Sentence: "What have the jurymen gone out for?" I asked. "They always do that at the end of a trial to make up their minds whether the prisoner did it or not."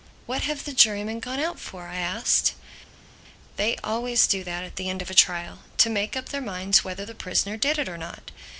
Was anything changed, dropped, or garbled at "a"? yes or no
no